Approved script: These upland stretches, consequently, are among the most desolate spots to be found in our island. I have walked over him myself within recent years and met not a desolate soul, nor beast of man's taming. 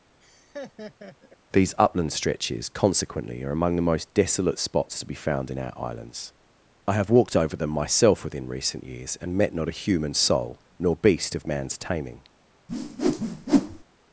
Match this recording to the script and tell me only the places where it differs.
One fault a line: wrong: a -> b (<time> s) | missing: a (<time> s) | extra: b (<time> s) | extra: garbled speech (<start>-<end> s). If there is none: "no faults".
wrong: island -> islands (5.8 s)
wrong: him -> them (7.6 s)
wrong: desolate -> human (9.7 s)